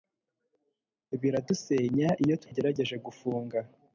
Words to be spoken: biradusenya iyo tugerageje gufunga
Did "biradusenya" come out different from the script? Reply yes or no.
no